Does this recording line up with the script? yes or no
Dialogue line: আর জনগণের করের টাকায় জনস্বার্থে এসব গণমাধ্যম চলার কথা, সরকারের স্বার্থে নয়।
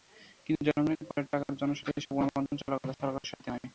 no